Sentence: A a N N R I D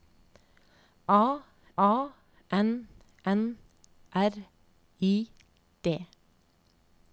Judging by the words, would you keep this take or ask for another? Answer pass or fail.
pass